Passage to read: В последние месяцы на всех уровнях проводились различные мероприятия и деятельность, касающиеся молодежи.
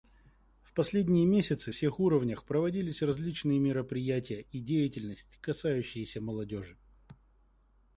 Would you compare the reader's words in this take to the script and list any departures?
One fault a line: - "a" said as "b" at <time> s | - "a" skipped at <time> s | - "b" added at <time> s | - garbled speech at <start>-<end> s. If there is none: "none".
- "на" skipped at 1.7 s